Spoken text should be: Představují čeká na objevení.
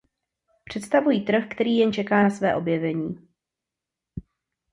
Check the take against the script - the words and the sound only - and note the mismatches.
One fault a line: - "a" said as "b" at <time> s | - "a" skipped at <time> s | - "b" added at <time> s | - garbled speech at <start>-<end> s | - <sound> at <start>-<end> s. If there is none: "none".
- "trh který jen" added at 1.2 s
- "své" added at 2.3 s